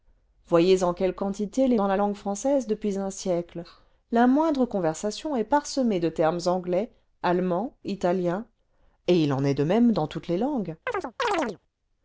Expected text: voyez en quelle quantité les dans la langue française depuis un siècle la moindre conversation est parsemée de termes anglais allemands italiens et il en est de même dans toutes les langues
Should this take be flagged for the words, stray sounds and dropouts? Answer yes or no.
yes